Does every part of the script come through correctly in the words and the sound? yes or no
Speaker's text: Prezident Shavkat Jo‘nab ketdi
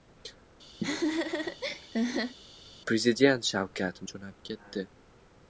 no